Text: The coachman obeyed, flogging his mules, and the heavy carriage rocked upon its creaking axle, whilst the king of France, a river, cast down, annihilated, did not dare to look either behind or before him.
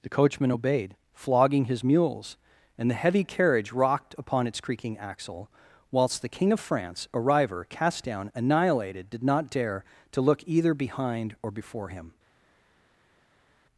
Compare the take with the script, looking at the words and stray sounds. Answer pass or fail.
pass